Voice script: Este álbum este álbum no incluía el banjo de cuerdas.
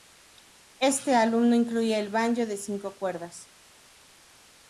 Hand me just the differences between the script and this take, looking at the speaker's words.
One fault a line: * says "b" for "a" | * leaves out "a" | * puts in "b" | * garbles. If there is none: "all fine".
* leaves out "este álbum"
* puts in "cinco"